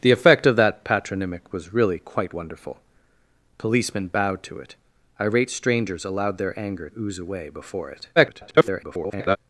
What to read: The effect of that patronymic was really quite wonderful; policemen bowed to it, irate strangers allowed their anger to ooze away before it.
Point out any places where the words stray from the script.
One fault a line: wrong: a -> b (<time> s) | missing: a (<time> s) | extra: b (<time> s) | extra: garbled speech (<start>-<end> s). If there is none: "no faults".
missing: to (6.9 s)
extra: garbled speech (8.2-9.4 s)